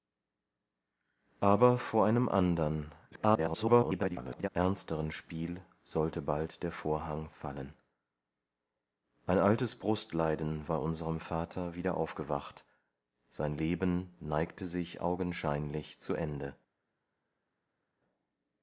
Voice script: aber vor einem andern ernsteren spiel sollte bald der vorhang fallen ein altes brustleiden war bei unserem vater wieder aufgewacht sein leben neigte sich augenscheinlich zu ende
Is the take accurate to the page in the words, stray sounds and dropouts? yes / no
no